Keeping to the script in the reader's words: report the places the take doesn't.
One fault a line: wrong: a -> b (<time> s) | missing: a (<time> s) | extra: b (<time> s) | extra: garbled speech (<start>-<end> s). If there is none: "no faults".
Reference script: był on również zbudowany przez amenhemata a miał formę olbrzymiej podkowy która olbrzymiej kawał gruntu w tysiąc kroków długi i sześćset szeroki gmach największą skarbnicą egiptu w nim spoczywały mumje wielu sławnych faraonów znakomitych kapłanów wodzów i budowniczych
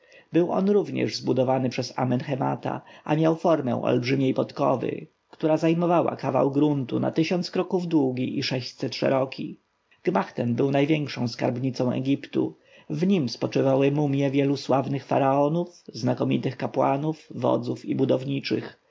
wrong: olbrzymiej -> zajmowała (5.6 s)
wrong: w -> na (7.0 s)
extra: ten był (10.3 s)